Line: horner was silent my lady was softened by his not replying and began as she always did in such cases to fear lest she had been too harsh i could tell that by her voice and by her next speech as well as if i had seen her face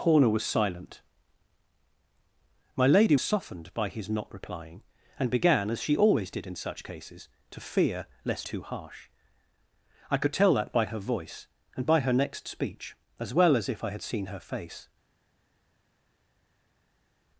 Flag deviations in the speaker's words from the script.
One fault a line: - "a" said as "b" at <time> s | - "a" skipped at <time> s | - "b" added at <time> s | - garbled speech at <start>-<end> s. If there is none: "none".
- "was" skipped at 3.1 s
- "she had been" skipped at 8.5 s